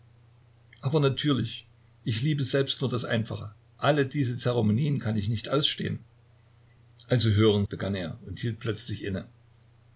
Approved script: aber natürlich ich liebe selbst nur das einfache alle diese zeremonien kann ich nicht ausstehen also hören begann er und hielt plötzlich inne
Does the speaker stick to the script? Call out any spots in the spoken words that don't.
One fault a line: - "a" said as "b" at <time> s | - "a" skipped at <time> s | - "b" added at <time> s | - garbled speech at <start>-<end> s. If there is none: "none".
none